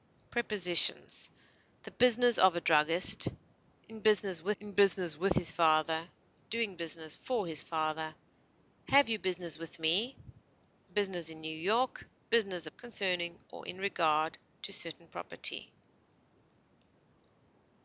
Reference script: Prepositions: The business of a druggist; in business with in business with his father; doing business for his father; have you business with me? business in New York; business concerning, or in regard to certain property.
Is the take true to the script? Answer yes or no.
yes